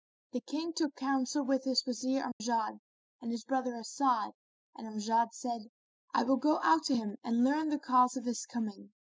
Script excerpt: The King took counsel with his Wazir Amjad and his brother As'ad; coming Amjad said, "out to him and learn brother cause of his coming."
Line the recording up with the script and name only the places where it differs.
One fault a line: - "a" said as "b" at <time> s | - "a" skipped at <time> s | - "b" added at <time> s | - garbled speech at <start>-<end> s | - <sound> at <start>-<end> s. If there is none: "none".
- dropout at 2.3-2.4 s
- "coming" said as "and" at 4.7 s
- "I will go" added at 6.1 s
- "brother" said as "the" at 7.7 s